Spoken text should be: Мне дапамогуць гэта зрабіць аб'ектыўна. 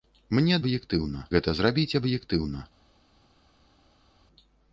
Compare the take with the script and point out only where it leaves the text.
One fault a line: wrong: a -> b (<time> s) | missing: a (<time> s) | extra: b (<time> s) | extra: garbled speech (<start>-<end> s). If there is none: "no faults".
wrong: дапамогуць -> аб'ектыўна (0.6 s)